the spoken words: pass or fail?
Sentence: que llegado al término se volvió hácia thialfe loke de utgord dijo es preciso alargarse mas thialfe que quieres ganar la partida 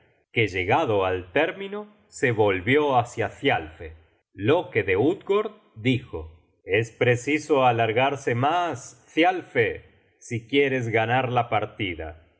fail